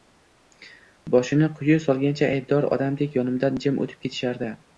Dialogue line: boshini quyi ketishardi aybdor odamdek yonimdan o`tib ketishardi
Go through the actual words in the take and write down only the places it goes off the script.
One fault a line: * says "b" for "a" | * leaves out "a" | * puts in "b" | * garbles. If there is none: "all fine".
* says "solgancha" for "ketishardi"
* puts in "jim"